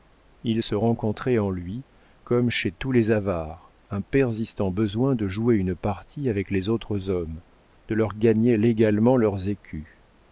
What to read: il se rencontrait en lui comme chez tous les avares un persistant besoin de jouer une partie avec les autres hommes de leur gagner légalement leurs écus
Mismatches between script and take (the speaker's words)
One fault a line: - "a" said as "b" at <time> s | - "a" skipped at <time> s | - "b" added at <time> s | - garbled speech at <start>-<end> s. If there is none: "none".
none